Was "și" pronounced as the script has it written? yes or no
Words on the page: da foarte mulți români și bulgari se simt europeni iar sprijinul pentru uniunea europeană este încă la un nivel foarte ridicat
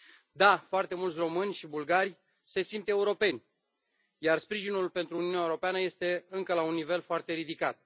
yes